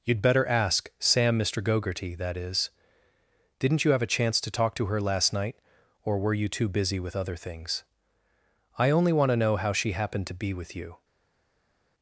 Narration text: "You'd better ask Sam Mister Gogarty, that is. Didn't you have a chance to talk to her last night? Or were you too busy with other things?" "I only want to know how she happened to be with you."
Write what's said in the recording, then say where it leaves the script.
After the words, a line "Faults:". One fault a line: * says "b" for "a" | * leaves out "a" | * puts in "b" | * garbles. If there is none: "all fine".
"You'd better ask Sam Mister Gogarty, that is. Didn't you have a chance to talk to her last night? Or were you too busy with other things?" "I only want to know how she happened to be with you."
Faults:
all fine